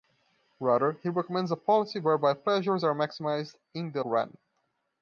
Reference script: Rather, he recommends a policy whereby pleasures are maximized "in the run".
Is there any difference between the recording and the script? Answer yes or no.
no